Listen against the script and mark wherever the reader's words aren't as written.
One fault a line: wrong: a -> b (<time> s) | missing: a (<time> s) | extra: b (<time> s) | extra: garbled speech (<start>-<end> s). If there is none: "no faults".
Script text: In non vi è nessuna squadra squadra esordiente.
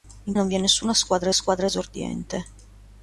no faults